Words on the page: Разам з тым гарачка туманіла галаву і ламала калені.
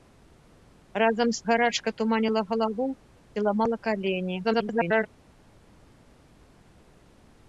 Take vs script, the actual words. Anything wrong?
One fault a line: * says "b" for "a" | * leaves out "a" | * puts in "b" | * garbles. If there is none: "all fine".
* leaves out "тым"
* garbles